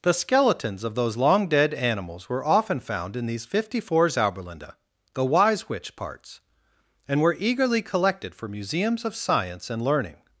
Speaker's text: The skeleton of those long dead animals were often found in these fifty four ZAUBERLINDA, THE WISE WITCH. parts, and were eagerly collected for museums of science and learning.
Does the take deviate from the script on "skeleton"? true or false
true